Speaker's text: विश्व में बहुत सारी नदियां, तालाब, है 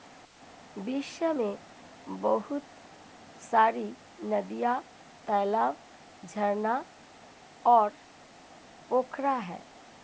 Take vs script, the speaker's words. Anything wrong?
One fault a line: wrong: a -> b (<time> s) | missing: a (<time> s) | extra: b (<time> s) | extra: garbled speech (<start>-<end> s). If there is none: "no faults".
extra: झरना और पोखरा (6.2 s)